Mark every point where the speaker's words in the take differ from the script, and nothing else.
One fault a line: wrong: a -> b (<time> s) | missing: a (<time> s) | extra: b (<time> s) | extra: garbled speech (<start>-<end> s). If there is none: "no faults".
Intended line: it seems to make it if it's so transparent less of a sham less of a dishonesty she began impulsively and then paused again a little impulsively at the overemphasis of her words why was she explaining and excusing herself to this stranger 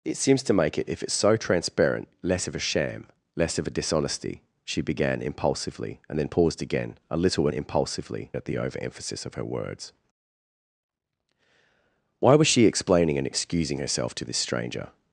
no faults